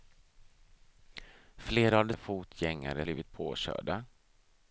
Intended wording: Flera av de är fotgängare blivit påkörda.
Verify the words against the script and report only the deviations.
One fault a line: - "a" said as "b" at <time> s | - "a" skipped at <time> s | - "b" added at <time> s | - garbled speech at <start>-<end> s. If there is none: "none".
none